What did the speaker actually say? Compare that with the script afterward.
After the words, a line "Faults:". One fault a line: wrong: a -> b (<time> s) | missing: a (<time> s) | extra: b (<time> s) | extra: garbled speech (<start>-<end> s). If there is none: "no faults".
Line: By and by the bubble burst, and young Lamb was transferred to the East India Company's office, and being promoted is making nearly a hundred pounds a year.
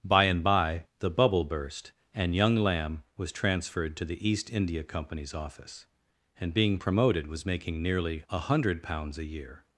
By and by the bubble burst, and young Lamb was transferred to the East India Company's office, and being promoted was making nearly a hundred pounds a year.
Faults:
wrong: is -> was (7.3 s)